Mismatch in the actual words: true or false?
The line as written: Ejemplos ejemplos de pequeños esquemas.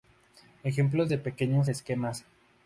true